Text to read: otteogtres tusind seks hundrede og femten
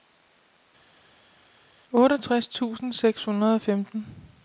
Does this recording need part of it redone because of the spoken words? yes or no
no